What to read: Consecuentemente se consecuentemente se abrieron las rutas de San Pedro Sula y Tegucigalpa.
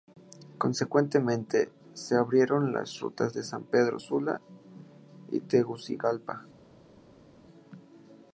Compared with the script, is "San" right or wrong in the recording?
right